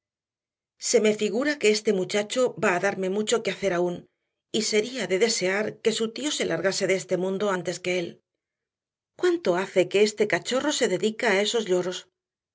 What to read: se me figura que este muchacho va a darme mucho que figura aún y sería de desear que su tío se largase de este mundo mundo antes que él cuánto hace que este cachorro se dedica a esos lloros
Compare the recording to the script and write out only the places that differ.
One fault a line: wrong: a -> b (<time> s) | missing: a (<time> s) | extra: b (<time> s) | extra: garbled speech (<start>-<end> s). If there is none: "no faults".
wrong: figura -> hacer (3.5 s)
missing: mundo (7.5 s)